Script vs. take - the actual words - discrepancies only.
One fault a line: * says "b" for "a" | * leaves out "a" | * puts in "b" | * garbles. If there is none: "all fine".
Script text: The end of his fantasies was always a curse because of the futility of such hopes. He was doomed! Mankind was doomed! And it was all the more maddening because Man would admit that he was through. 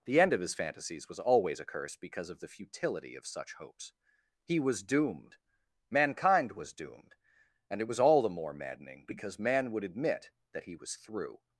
all fine